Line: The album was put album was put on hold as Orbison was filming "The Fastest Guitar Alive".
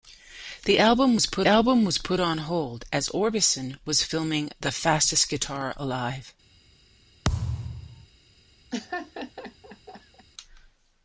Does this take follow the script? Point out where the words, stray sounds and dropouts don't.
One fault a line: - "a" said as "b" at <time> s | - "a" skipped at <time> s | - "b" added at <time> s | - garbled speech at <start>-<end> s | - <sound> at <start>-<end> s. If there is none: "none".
- thud at 7.2-8.1 s
- laugh at 8.7-10.3 s